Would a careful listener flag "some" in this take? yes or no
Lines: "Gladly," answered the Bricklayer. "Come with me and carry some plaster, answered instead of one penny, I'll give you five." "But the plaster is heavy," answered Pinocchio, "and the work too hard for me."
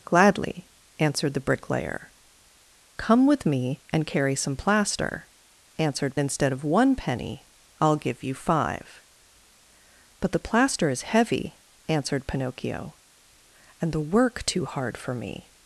no